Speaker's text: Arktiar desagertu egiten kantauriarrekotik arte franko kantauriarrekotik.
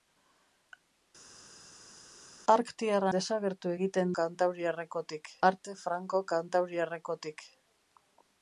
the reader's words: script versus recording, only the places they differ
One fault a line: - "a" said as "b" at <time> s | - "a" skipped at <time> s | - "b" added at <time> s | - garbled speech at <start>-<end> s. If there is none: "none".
none